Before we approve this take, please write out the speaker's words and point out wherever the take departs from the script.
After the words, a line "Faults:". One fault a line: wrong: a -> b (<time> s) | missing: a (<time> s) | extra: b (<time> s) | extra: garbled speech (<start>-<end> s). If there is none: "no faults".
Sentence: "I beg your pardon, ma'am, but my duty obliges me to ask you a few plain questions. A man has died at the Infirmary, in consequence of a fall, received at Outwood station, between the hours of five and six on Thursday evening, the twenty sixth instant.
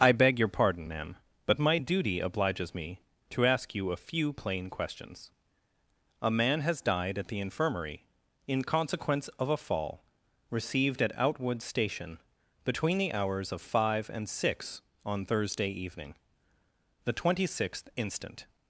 "I beg your pardon, ma'am, but my duty obliges me to ask you a few plain questions. A man has died at the Infirmary, in consequence of a fall, received at Outwood station, between the hours of five and six on Thursday evening, the twenty sixth instant.
Faults:
no faults